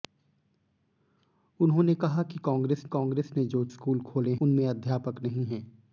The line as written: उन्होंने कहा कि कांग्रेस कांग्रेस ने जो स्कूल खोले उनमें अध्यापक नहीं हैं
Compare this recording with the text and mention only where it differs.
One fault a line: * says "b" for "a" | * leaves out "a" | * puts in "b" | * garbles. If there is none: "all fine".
all fine